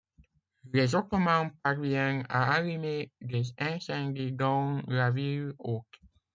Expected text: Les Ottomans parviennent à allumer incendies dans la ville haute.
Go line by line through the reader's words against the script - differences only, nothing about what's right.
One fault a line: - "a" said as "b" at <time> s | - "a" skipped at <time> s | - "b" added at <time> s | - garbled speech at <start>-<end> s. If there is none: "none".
- "des" added at 3.2 s